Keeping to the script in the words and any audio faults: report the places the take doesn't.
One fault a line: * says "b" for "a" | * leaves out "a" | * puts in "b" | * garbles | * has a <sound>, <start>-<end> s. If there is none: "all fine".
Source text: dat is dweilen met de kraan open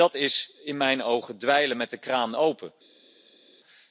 * puts in "in mijn ogen"